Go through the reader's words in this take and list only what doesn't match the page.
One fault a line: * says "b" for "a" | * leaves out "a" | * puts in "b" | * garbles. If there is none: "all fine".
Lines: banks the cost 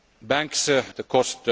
all fine